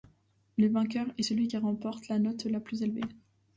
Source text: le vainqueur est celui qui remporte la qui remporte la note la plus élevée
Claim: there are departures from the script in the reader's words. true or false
true